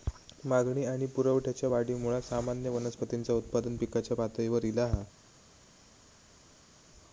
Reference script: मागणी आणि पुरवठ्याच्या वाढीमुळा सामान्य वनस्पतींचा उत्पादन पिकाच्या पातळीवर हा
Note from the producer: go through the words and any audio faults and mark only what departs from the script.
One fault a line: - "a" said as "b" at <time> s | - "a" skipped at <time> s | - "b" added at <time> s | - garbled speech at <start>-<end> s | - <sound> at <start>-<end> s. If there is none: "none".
- "ईला" added at 4.6 s